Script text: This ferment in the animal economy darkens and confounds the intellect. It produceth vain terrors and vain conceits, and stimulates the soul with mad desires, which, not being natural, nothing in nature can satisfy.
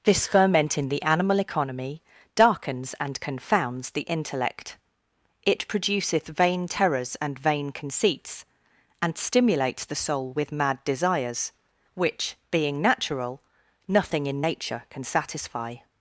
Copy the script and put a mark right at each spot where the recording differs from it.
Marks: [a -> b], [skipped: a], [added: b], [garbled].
This ferment in the animal economy darkens and confounds the intellect. It produceth vain terrors and vain conceits, and stimulates the soul with mad desires, which, [skipped: not] being natural, nothing in nature can satisfy.